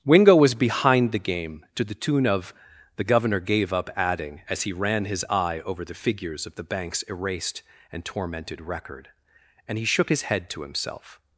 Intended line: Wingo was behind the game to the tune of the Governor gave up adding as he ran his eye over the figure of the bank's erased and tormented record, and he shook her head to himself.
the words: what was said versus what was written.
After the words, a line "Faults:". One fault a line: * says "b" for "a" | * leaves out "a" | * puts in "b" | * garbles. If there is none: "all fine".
Wingo was behind the game to the tune of the Governor gave up adding as he ran his eye over the figures of the bank's erased and tormented record, and he shook his head to himself.
Faults:
* says "figures" for "figure"
* says "his" for "her"